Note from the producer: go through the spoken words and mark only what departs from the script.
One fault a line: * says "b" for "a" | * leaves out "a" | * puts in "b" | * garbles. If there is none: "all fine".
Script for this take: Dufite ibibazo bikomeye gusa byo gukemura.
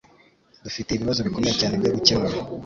* says "cyane" for "gusa"